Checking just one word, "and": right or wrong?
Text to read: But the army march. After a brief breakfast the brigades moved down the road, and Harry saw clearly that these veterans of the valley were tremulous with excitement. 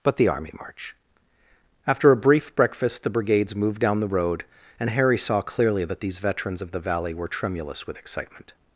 right